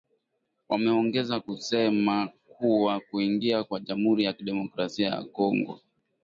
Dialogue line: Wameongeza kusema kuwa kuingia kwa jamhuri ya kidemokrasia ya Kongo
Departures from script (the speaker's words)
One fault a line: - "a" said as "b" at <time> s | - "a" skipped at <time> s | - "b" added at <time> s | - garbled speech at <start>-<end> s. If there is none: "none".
none